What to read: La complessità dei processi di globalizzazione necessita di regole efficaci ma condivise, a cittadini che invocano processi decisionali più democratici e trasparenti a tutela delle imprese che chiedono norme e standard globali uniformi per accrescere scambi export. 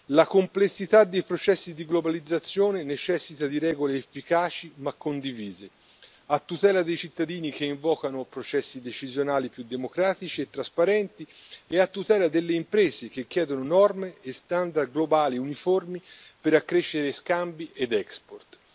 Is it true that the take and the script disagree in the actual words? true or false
true